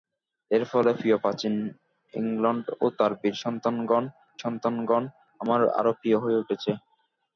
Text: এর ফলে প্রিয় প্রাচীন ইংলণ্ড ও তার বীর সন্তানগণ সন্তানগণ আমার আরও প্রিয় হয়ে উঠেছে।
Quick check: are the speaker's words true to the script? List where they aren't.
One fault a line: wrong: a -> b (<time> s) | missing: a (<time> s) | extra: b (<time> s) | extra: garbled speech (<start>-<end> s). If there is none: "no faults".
no faults